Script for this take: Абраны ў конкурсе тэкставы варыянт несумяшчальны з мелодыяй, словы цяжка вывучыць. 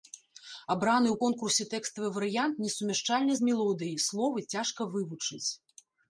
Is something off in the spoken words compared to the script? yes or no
no